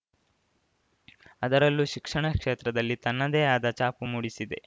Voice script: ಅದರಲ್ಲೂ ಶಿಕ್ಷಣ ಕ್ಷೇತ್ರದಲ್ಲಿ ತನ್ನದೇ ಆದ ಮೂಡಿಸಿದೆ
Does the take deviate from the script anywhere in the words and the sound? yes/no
yes